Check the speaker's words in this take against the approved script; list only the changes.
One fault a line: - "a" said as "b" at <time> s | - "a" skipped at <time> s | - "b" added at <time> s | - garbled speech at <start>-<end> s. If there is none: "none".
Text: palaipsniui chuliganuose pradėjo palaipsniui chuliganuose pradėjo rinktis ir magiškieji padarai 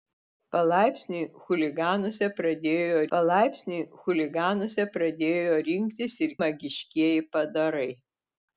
none